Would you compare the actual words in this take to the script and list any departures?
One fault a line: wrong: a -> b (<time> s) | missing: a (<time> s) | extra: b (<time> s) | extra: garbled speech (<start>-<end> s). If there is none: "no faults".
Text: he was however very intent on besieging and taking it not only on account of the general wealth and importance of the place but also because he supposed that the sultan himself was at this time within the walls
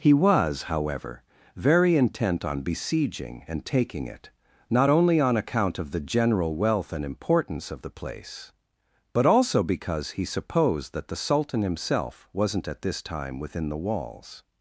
wrong: was -> wasn't (12.3 s)